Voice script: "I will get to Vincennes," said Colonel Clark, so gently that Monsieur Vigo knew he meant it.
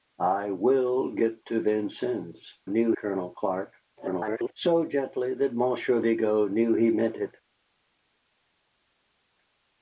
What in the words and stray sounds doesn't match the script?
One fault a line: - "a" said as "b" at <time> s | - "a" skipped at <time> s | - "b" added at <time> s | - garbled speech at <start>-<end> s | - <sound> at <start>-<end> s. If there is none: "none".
- "said" said as "knew" at 2.7 s
- garbled speech at 4.0-4.5 s